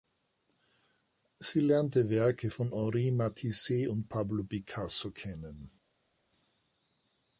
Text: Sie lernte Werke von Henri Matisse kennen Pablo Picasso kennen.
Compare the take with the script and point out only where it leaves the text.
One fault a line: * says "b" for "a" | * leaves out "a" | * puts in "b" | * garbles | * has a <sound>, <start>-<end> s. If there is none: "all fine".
* says "und" for "kennen"